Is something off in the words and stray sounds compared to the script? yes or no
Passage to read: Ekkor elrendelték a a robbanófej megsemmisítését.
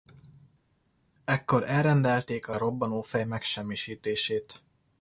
no